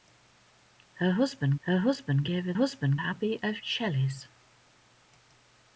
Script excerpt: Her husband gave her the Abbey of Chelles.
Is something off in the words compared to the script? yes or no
yes